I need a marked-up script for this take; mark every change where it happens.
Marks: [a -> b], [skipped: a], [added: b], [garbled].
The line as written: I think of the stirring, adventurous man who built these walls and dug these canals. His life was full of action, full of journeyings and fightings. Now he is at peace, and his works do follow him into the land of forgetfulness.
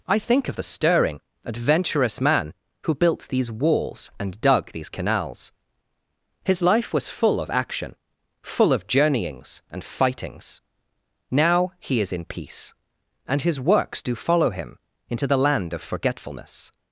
I think of the stirring, adventurous man who built these walls and dug these canals. His life was full of action, full of journeyings and fightings. Now he is [at -> in] peace, and his works do follow him into the land of forgetfulness.